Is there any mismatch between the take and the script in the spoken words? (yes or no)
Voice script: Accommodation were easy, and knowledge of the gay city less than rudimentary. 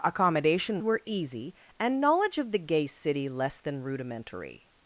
no